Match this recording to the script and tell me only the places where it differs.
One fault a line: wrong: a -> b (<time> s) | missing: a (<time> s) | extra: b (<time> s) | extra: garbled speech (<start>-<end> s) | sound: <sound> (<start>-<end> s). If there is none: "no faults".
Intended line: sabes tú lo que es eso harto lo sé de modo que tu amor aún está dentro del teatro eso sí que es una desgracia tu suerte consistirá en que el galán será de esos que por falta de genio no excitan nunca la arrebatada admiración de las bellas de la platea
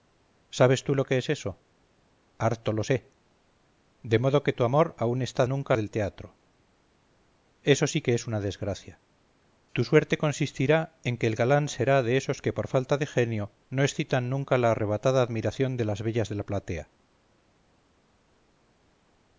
wrong: dentro -> nunca (5.5 s)